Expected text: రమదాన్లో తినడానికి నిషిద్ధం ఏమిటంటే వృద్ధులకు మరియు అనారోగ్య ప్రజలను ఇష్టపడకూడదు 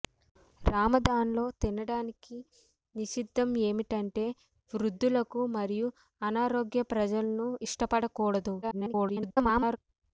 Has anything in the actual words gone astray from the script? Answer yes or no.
yes